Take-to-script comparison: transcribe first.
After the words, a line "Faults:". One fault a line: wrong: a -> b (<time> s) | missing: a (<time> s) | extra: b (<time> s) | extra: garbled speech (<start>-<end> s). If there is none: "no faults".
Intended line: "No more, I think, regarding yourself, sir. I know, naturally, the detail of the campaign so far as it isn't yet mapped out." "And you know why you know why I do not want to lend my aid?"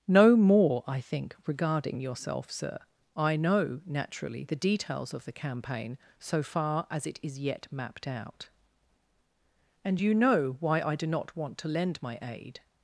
"No more, I think, regarding yourself, sir. I know, naturally, the details of the campaign so far as it is yet mapped out." "And you know why I do not want to lend my aid?"
Faults:
wrong: detail -> details (4.5 s)
wrong: isn't -> is (7.2 s)
missing: you know why (10.8 s)